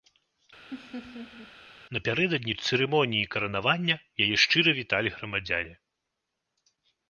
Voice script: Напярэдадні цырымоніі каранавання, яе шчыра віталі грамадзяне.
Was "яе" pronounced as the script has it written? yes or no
yes